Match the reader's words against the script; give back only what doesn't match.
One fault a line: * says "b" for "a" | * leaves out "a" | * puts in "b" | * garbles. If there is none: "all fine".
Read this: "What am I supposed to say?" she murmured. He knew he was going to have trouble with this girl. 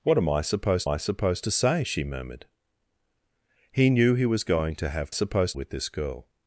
* puts in "I supposed"
* says "supposed" for "trouble"